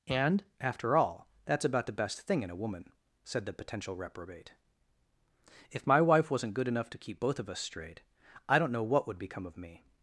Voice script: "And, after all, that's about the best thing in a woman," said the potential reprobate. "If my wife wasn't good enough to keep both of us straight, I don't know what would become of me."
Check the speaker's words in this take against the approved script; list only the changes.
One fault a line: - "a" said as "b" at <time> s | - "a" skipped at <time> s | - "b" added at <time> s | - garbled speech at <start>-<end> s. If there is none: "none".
none